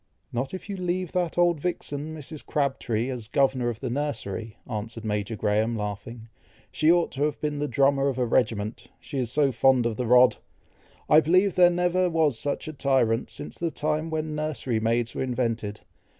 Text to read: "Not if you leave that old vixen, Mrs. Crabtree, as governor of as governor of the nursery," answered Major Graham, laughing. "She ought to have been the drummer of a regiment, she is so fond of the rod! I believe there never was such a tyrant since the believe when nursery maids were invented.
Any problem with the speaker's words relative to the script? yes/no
yes